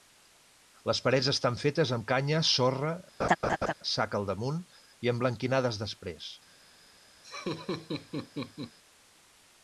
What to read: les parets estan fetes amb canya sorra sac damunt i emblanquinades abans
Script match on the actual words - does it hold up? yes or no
no